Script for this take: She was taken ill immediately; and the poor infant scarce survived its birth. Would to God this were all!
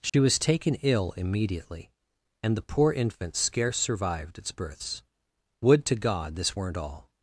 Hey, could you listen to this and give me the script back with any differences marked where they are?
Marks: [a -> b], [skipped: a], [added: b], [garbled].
She was taken ill immediately; and the poor infant scarce survived its [birth. -> births] Would to God this [were -> weren't] all!